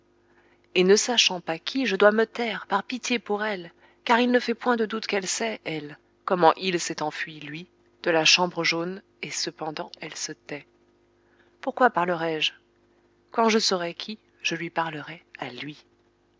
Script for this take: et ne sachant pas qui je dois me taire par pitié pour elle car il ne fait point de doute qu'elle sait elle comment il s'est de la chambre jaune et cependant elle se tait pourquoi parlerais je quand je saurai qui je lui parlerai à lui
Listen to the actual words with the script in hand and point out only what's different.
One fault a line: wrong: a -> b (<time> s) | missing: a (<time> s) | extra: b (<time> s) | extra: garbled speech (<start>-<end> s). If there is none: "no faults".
extra: enfui lui (7.0 s)